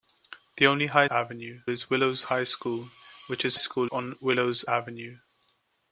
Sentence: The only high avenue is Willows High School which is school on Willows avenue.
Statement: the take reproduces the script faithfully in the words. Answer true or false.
true